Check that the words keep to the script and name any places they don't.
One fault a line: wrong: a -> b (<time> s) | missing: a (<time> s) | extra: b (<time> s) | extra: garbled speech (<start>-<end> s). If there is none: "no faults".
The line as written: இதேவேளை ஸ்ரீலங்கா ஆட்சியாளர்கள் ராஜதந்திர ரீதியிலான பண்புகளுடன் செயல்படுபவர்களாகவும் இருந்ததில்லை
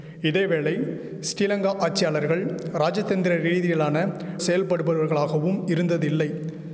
missing: பண்புகளுடன் (4.0 s)